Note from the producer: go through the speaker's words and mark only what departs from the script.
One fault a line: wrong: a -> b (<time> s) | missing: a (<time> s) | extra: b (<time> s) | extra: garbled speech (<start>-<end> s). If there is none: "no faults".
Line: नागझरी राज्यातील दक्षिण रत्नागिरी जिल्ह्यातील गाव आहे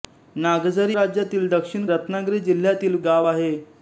no faults